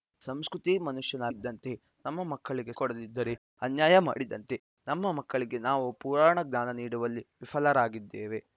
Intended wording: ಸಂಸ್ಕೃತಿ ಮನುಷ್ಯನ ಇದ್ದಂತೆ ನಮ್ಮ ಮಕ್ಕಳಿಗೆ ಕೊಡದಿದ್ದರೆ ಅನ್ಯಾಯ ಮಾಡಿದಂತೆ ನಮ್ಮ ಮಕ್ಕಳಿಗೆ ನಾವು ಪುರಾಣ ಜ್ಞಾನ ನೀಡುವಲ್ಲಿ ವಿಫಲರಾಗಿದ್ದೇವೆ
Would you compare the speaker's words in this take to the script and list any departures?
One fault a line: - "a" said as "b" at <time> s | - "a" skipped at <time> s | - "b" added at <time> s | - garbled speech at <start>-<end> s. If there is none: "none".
none